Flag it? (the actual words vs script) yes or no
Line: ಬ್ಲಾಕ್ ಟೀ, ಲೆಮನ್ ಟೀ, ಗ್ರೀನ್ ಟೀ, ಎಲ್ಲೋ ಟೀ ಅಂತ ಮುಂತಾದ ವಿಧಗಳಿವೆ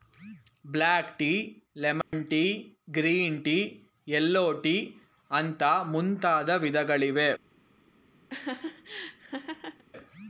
no